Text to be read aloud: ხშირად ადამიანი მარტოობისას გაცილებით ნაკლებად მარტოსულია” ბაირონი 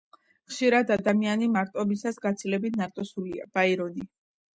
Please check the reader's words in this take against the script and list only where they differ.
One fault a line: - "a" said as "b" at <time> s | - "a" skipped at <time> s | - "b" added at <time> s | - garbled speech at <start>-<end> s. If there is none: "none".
- "ნაკლებად" skipped at 2.8 s